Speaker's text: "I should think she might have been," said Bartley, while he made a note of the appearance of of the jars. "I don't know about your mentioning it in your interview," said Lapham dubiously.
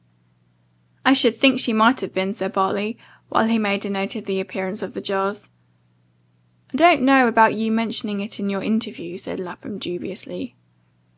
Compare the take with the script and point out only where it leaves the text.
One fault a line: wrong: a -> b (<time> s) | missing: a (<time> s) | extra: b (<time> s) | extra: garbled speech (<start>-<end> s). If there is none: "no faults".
missing: of (5.0 s)